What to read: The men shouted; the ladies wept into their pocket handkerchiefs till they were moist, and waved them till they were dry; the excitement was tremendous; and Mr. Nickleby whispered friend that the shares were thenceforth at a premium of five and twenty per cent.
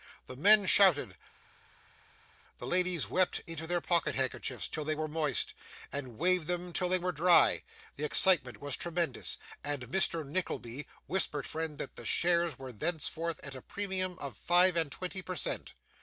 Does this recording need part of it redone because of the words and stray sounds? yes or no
no